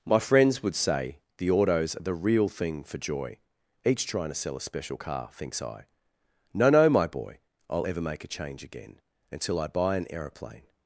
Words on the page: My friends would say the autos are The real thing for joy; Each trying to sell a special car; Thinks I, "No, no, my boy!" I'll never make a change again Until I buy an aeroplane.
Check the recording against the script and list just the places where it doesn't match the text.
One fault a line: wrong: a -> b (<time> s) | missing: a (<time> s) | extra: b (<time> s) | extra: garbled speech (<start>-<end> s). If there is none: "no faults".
wrong: never -> ever (7.8 s)